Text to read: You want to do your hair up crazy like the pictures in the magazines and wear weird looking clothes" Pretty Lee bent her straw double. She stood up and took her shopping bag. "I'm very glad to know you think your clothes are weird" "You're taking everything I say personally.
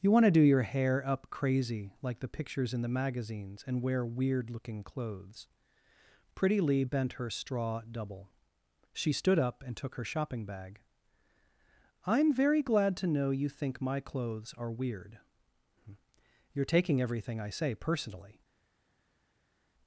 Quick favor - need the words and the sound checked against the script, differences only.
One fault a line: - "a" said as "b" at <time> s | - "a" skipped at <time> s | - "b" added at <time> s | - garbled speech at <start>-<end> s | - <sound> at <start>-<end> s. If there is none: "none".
- "your" said as "my" at 13.8 s